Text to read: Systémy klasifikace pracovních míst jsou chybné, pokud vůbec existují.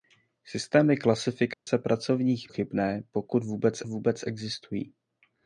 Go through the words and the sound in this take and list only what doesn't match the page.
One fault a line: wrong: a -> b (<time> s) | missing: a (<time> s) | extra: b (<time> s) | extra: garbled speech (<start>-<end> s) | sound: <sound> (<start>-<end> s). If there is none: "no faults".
sound: dropout (1.5-1.7 s)
missing: míst jsou (2.5 s)
extra: vůbec (3.9 s)